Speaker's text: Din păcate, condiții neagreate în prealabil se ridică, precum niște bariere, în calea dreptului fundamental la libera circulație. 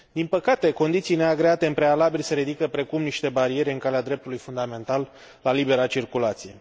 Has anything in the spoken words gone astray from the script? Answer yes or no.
no